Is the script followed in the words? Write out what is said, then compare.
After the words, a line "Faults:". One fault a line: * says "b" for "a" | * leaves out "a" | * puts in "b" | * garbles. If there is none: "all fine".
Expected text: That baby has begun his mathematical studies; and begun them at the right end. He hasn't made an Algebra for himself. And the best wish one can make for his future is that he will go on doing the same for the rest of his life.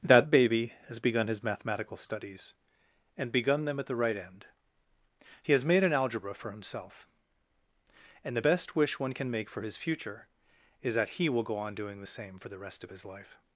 That baby has begun his mathematical studies; and begun them at the right end. He has made an Algebra for himself. And the best wish one can make for his future is that he will go on doing the same for the rest of his life.
Faults:
* says "has" for "hasn't"